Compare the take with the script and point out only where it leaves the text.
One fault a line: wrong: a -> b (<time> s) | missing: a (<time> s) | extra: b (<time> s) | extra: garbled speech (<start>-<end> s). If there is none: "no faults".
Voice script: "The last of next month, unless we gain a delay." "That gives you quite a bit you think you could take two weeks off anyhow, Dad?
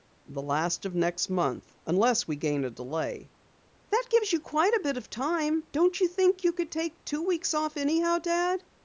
extra: of time Don't (5.0 s)